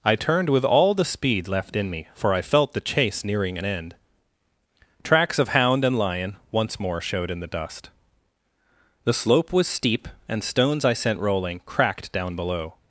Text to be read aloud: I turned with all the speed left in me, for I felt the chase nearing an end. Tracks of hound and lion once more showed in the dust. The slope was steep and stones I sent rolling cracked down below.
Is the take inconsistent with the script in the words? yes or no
no